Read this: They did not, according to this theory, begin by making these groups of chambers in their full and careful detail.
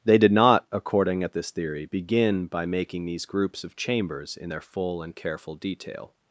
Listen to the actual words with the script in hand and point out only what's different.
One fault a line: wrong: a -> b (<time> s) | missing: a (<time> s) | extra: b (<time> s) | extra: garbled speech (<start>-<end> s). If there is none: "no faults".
wrong: to -> at (1.2 s)